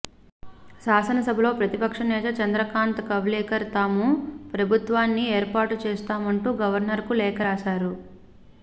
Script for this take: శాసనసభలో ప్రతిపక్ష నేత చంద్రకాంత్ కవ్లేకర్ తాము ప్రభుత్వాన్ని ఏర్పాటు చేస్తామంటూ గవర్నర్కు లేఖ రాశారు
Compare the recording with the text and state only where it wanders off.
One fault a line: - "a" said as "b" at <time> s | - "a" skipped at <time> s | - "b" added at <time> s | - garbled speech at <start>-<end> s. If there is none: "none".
none